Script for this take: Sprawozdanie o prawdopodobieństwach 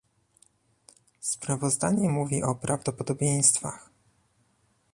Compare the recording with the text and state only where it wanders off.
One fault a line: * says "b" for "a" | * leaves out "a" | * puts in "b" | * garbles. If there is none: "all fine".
* puts in "mówi"